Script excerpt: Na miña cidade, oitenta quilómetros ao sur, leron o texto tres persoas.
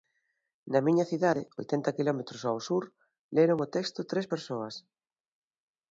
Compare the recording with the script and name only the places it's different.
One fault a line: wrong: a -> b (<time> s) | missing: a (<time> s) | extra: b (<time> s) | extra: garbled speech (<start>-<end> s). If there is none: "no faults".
no faults